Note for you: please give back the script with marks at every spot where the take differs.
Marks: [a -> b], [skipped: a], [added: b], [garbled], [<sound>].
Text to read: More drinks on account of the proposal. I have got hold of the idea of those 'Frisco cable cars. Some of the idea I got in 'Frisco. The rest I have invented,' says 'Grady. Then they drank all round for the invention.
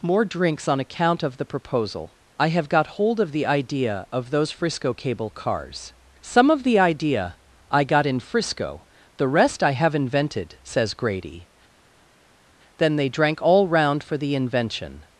More drinks on account of the proposal. I have got hold of the idea of those 'Frisco cable cars. Some of the idea I got in 'Frisco. The rest I have invented,' says 'Grady. Then they drank all round for the invention.